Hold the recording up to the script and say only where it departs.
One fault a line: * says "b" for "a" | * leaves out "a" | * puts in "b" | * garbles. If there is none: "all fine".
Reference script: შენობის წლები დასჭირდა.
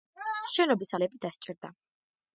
all fine